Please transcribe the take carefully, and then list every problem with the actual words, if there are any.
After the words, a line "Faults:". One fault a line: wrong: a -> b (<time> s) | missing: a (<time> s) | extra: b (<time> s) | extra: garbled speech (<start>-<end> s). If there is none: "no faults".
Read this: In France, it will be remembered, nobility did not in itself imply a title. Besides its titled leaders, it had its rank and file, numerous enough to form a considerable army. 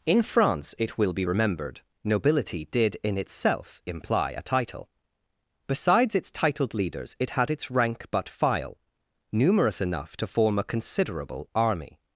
In France, it will be remembered, nobility did in itself imply a title. Besides its titled leaders, it had its rank but file, numerous enough to form a considerable army.
Faults:
missing: not (3.0 s)
wrong: and -> but (8.1 s)